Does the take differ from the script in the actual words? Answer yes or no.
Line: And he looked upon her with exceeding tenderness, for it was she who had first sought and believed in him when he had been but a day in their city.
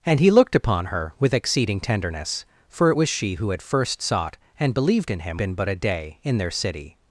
yes